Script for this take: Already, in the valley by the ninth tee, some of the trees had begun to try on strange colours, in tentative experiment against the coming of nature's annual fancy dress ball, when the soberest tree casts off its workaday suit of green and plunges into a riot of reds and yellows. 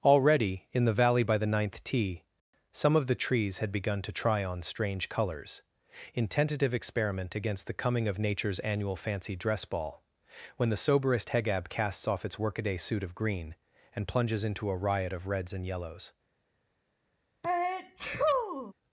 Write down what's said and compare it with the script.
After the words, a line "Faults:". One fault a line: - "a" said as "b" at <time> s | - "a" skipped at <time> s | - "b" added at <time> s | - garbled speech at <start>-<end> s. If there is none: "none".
Already, in the valley by the ninth tee, some of the trees had begun to try on strange colours, in tentative experiment against the coming of nature's annual fancy dress ball, when the soberest hegab casts off its workaday suit of green and plunges into a riot of reds and yellows.
Faults:
- "tree" said as "hegab" at 11.3 s